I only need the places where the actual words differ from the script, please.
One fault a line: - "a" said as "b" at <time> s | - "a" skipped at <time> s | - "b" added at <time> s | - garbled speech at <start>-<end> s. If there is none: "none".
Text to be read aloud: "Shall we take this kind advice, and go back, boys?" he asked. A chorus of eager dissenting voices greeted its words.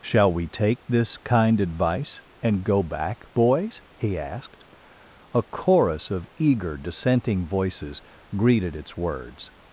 none